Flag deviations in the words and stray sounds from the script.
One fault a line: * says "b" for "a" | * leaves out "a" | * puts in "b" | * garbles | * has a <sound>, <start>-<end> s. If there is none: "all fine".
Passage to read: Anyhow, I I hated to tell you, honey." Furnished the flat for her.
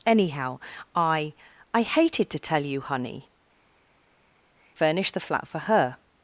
all fine